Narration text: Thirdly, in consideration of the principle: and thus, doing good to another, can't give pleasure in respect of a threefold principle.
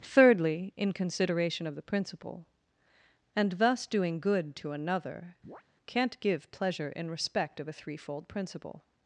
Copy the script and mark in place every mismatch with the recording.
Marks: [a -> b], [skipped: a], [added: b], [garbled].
Thirdly, in consideration of the principle: and thus, doing good to another, can't give pleasure in respect of a threefold principle.